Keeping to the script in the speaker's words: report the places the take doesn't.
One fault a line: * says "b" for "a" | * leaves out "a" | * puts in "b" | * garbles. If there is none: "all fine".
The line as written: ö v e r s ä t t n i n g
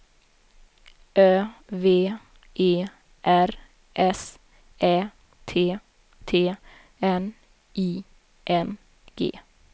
all fine